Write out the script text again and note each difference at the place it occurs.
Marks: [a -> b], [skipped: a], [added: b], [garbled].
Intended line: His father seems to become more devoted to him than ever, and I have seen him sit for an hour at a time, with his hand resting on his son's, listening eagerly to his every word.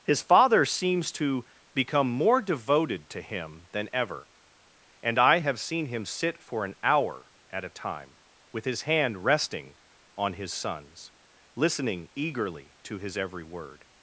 His father seems to become more devoted to him than ever, and I have seen him sit for an hour at a time, with his hand resting on his son's, listening eagerly to his every word.